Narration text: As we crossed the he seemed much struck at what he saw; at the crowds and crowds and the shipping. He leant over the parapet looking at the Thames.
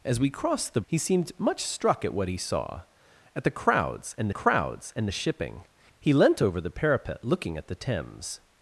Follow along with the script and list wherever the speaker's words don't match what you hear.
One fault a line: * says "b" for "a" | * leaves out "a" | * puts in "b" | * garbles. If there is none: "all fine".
all fine